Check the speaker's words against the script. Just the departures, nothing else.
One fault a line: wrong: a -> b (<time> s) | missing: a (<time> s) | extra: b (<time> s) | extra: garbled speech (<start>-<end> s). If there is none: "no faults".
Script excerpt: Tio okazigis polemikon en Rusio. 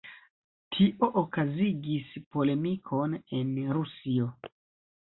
no faults